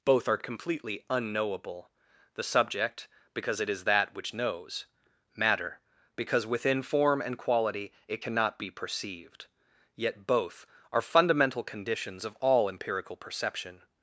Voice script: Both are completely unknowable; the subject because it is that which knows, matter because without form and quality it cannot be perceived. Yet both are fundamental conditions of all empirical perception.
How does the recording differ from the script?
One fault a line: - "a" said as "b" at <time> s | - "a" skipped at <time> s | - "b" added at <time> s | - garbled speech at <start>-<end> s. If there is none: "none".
- "without" said as "within" at 6.5 s